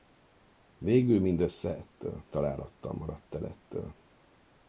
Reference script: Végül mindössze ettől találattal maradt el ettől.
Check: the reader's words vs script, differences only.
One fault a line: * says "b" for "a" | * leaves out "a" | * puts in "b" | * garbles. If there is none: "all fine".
all fine